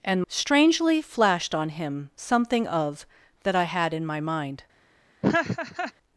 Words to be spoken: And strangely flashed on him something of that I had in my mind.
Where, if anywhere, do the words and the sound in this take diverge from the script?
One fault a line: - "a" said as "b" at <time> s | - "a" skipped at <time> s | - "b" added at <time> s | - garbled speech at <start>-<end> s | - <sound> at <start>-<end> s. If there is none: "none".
- laugh at 5.2-5.9 s